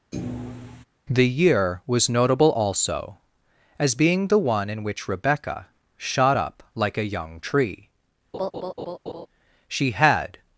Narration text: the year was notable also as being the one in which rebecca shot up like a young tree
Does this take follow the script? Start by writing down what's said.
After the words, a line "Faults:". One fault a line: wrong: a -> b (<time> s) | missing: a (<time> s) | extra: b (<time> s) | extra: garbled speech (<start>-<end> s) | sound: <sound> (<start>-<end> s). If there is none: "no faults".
the year was notable also as being the one in which rebecca shot up like a young tree she had
Faults:
sound: thud (0.1-0.8 s)
sound: laugh (8.3-9.3 s)
extra: she had (9.7 s)